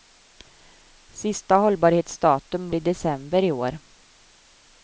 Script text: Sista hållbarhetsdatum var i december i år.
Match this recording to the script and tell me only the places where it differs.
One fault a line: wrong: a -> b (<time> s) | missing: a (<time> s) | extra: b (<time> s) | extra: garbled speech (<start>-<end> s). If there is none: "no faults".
missing: var (2.7 s)